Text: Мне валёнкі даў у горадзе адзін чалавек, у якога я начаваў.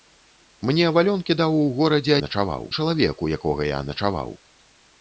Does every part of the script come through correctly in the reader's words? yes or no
no